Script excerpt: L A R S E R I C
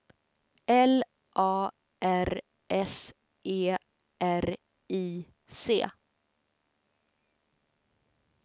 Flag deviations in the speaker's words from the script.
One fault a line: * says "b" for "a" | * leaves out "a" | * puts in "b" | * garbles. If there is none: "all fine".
all fine